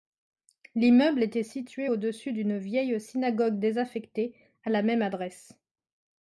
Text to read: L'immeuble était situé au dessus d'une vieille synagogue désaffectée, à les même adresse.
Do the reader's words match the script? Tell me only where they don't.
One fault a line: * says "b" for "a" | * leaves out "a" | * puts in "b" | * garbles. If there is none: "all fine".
* says "la" for "les"